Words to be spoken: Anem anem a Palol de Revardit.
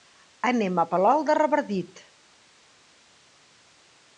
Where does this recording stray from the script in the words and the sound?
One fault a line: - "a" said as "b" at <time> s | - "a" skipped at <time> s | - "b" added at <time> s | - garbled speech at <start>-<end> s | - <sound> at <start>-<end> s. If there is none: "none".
- "anem" skipped at 0.8 s